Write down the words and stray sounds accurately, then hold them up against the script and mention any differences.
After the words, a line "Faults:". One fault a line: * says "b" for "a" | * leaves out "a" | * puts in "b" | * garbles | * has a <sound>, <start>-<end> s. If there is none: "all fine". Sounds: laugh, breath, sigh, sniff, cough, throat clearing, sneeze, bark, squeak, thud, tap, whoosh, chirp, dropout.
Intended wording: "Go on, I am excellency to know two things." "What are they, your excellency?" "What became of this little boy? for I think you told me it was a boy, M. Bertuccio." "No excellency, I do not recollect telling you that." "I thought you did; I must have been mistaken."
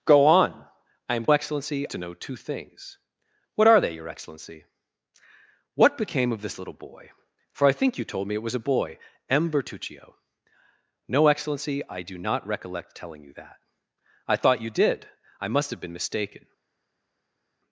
"Go on, I am excellency to know two things." "What are they, your excellency?" "What became of this little boy? for I think you told me it was a boy, M. Bertuccio." "No excellency, I do not recollect telling you that." "I thought you did; I must have been mistaken."
Faults:
all fine